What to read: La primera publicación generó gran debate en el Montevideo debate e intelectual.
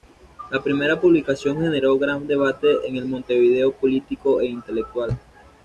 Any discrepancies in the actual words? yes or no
yes